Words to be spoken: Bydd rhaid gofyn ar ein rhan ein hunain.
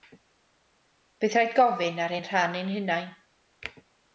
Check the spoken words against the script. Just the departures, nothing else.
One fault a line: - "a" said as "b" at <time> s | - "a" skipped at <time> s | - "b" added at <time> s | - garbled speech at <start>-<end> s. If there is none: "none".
none